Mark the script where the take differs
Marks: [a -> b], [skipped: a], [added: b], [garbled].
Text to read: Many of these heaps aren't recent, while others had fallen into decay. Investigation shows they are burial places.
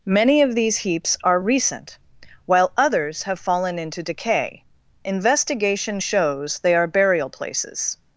Many of these heaps [aren't -> are] recent, while others [had -> have] fallen into decay. Investigation shows they are burial places.